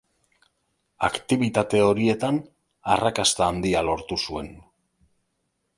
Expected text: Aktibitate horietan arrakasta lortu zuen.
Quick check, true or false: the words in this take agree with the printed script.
false